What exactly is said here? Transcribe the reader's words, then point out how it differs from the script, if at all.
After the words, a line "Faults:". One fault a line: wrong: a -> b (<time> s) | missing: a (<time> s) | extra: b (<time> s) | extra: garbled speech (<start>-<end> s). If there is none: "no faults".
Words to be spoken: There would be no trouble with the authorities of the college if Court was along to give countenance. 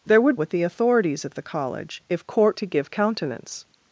There would with the authorities of the college if Court to give countenance.
Faults:
missing: be no trouble (0.4 s)
missing: was along (2.6 s)